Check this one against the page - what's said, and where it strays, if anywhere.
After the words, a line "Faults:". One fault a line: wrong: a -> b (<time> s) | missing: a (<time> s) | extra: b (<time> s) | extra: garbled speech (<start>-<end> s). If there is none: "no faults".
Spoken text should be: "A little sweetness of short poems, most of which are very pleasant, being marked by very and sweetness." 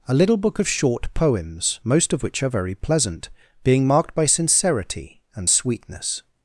"A little book of short poems, most of which are very pleasant, being marked by sincerity and sweetness."
Faults:
wrong: sweetness -> book (0.4 s)
wrong: very -> sincerity (4.2 s)